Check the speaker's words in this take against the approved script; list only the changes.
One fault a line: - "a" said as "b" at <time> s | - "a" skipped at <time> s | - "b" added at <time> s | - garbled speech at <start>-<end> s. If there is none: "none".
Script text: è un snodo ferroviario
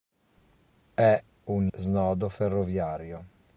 none